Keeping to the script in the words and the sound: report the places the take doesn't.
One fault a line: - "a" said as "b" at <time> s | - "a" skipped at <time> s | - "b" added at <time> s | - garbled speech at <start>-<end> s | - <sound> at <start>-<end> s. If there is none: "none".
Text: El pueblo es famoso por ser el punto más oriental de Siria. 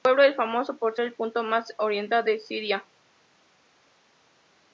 - "ser" skipped at 1.0 s